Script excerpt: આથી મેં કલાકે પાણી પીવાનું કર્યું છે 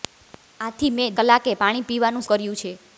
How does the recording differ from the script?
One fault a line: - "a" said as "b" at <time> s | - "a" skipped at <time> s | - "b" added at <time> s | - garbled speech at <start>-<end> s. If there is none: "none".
none